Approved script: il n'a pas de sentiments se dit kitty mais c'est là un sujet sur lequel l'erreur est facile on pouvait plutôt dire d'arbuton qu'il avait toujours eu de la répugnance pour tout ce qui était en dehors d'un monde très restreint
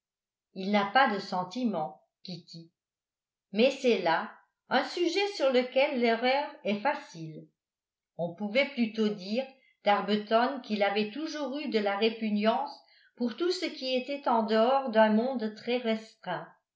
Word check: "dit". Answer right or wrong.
wrong